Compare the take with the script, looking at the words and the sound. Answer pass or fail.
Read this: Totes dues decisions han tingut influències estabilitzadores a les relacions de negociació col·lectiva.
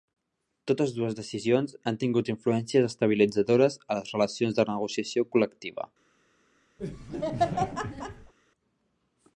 fail